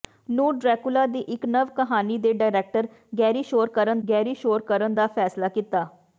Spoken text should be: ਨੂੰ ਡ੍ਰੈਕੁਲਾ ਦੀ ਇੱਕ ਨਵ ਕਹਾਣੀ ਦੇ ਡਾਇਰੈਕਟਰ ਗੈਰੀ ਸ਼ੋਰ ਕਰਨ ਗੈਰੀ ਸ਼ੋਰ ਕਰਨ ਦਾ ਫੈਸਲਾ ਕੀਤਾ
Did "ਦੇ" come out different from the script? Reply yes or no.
no